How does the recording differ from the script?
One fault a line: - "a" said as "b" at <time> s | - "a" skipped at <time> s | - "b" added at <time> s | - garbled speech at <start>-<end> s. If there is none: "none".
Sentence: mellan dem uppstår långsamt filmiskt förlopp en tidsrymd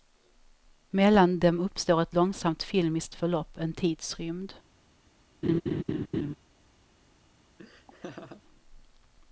- "ett" added at 2.0 s